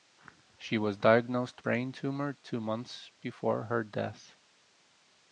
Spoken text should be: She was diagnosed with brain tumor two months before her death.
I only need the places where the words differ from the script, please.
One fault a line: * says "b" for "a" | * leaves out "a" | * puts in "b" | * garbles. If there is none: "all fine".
* leaves out "with"